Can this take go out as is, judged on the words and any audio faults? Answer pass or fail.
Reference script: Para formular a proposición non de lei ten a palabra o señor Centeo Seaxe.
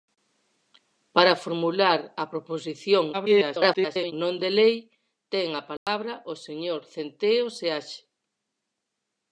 fail